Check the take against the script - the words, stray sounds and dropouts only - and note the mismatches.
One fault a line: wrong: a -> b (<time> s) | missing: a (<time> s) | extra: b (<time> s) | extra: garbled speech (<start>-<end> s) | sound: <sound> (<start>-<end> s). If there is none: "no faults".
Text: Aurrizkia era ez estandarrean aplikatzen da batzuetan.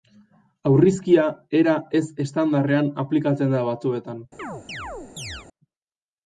sound: chirp (4.4-5.5 s)